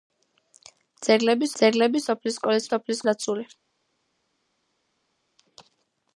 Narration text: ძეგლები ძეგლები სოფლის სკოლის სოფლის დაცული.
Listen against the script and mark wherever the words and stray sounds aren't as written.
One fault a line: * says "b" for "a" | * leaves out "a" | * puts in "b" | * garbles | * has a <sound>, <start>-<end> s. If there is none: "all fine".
all fine